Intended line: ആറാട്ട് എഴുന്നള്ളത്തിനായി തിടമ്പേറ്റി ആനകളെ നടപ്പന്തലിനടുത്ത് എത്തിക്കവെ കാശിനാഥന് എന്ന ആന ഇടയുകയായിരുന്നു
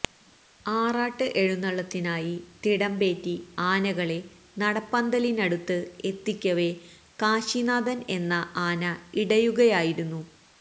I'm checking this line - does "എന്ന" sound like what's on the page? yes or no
yes